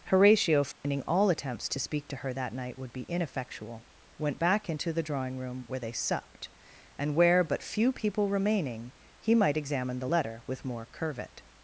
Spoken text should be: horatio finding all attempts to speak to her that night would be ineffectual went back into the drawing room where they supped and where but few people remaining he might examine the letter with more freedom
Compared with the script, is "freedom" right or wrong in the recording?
wrong